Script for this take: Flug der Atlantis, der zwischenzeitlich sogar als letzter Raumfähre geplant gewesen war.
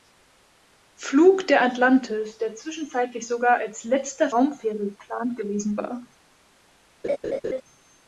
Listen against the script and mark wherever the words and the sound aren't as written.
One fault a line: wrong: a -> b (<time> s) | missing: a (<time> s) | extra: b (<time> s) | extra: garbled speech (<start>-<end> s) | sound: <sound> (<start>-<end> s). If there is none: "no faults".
sound: laugh (7.0-7.6 s)